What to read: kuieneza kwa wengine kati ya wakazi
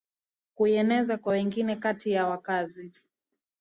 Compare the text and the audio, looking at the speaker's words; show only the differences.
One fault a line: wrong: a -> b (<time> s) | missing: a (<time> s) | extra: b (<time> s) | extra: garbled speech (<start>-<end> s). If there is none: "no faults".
no faults